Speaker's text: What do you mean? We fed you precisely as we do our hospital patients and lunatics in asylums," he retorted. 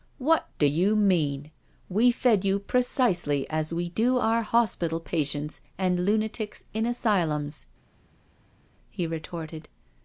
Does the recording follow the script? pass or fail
pass